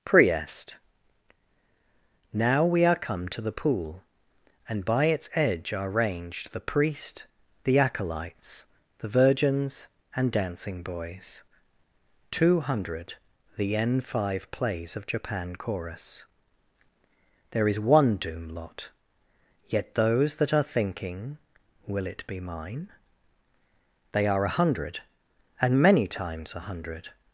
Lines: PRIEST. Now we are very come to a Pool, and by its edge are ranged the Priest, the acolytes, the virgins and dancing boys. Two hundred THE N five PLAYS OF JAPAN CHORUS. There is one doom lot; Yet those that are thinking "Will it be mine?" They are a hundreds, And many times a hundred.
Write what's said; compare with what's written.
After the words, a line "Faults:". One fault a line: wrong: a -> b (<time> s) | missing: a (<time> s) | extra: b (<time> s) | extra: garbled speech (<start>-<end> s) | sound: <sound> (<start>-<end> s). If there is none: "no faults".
PRIEST. Now we are come to the Pool, and by its edge are ranged the Priest, the acolytes, the virgins and dancing boys. Two hundred THE N five PLAYS OF JAPAN CHORUS. There is one doom lot; Yet those that are thinking "Will it be mine?" They are a hundred, And many times a hundred.
Faults:
missing: very (3.0 s)
wrong: a -> the (3.4 s)
wrong: hundreds -> hundred (24.5 s)